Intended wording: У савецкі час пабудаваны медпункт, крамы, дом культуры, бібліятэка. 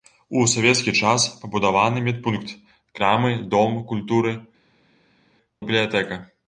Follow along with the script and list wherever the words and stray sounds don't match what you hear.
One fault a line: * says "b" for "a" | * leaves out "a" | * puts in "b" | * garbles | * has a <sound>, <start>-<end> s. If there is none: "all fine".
all fine